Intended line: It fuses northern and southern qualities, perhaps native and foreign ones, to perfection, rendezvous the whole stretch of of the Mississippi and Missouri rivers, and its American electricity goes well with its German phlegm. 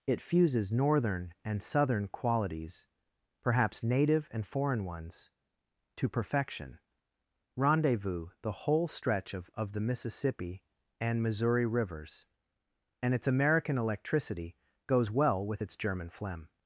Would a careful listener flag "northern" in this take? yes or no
no